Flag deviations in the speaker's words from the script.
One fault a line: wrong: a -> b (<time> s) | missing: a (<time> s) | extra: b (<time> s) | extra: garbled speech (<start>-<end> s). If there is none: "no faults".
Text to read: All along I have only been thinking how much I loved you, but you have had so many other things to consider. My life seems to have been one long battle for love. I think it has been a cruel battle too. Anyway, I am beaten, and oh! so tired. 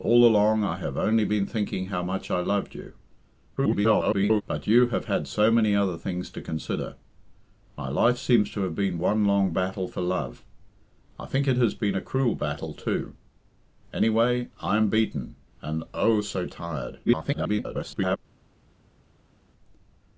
extra: garbled speech (3.6-4.4 s)
extra: garbled speech (17.1-18.2 s)